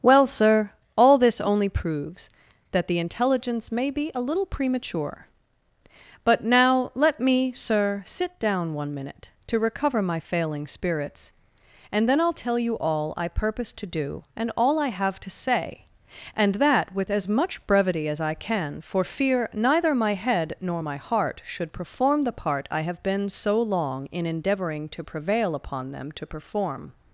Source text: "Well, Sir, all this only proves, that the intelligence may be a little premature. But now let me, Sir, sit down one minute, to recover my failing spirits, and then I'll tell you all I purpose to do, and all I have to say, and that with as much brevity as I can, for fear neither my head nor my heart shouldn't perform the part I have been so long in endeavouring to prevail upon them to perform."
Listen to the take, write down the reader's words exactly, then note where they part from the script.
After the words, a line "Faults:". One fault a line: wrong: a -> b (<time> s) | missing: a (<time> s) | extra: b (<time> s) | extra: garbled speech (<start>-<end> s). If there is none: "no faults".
"Well, Sir, all this only proves, that the intelligence may be a little premature. But now let me, Sir, sit down one minute, to recover my failing spirits, and then I'll tell you all I purpose to do, and all I have to say, and that with as much brevity as I can, for fear neither my head nor my heart should perform the part I have been so long in endeavouring to prevail upon them to perform."
Faults:
wrong: shouldn't -> should (21.4 s)